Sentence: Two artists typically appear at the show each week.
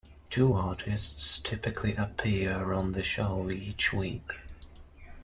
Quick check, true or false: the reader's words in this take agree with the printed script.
false